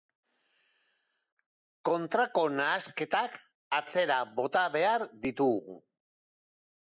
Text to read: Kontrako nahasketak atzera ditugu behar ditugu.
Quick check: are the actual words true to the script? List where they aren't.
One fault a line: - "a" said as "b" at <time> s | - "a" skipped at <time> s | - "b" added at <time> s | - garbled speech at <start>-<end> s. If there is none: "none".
- "ditugu" said as "bota" at 4.4 s